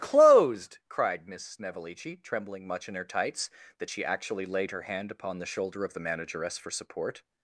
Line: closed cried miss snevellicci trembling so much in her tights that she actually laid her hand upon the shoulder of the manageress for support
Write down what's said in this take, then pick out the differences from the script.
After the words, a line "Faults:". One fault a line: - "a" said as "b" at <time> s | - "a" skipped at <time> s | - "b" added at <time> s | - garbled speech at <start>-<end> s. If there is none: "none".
closed cried miss snevellicci trembling much in her tights that she actually laid her hand upon the shoulder of the manageress for support
Faults:
- "so" skipped at 2.6 s